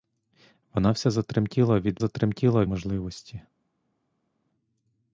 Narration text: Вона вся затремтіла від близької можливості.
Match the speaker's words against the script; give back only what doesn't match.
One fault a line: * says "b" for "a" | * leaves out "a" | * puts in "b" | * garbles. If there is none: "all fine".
* says "затремтіла" for "близької"